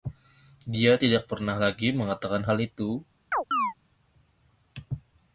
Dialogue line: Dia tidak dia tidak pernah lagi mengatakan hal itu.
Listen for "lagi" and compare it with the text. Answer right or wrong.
right